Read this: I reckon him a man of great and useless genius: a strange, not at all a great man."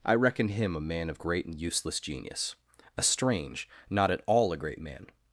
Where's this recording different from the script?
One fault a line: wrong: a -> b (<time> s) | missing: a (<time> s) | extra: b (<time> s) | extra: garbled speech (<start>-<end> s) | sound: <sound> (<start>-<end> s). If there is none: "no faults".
no faults